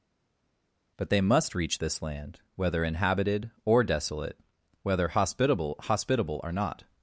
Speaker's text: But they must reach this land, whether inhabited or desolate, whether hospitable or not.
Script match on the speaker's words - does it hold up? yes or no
no